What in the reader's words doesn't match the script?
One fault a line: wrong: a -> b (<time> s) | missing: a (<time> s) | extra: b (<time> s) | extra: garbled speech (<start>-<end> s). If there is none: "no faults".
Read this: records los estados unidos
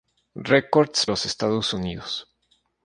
no faults